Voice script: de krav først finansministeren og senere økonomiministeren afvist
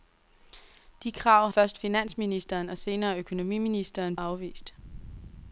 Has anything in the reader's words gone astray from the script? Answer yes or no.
no